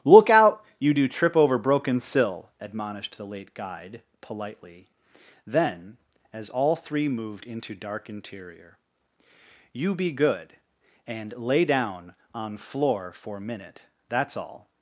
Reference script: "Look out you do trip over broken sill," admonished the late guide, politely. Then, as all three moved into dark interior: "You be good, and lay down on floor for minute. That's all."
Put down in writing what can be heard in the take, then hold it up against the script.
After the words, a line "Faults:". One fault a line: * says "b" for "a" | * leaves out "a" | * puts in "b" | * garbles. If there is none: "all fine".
"Look out you do trip over broken sill," admonished the late guide, politely. Then, as all three moved into dark interior: "You be good, and lay down on floor for minute. That's all."
Faults:
all fine